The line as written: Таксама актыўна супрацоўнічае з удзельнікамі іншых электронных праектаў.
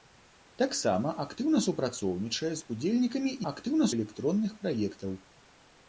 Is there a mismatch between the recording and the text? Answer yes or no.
yes